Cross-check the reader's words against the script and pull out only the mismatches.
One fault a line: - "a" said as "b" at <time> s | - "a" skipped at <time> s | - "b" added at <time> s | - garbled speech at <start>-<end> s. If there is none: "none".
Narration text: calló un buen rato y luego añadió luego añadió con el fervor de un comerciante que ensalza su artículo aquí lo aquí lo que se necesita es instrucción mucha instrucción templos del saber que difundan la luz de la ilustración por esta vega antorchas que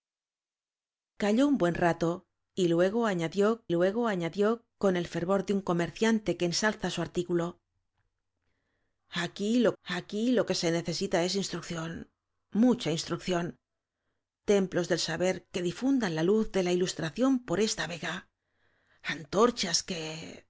none